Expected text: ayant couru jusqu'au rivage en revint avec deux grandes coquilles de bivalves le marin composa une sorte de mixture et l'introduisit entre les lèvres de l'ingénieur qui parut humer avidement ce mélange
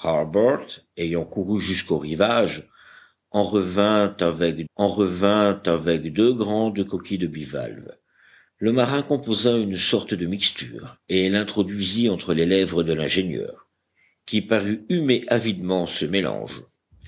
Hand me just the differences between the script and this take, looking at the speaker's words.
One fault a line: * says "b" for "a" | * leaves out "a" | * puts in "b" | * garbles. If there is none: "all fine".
* puts in "en revint avec"